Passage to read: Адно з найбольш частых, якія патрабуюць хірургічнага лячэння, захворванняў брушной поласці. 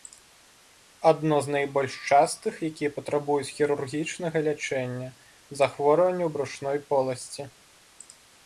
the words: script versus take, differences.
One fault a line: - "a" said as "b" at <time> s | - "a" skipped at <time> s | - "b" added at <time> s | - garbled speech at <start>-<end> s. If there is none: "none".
none